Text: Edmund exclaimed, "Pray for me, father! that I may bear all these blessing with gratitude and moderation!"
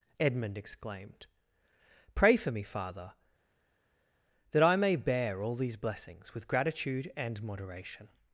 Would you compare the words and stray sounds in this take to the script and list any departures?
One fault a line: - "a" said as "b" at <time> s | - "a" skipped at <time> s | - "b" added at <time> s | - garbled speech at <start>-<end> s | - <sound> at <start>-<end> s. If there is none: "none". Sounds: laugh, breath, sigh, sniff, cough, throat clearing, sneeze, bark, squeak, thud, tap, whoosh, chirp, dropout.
- "blessing" said as "blessings" at 5.8 s